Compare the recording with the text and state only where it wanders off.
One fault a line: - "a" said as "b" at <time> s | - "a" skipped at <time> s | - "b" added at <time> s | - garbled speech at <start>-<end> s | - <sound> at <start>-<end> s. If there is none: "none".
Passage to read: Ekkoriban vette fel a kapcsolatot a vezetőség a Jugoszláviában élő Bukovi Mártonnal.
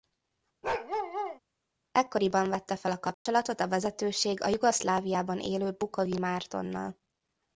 - bark at 0.6-1.4 s
- dropout at 3.1-3.3 s